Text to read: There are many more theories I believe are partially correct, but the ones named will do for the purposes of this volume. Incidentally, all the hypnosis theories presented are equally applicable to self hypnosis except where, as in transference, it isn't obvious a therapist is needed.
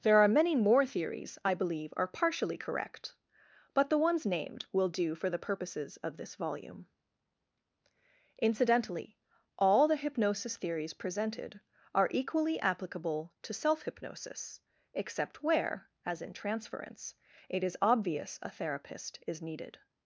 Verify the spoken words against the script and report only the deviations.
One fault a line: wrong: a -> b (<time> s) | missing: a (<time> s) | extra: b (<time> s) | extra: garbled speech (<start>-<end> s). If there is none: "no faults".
wrong: isn't -> is (17.6 s)